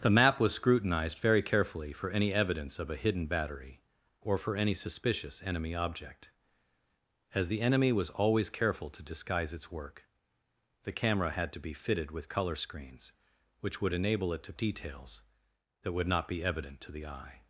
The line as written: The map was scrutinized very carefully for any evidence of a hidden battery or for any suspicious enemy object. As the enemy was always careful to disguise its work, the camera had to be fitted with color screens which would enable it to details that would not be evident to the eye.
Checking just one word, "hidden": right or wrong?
right